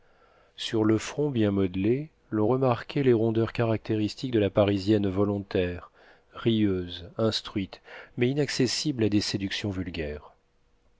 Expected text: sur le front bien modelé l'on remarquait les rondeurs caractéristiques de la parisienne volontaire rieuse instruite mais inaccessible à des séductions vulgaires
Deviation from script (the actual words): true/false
false